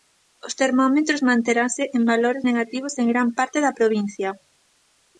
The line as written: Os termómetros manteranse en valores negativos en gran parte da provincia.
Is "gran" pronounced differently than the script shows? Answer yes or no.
no